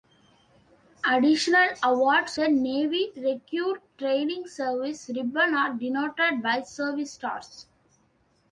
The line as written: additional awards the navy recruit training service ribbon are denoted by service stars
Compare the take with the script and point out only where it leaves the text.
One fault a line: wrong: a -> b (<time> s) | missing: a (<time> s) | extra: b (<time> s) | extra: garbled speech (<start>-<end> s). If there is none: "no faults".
no faults